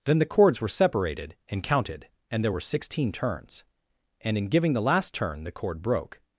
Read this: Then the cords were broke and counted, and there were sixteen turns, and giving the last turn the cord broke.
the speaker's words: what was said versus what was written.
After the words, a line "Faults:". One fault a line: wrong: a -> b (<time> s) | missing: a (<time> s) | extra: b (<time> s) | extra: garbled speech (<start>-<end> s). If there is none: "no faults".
Then the cords were separated and counted, and there were sixteen turns, and in giving the last turn the cord broke.
Faults:
wrong: broke -> separated (0.7 s)
extra: in (4.4 s)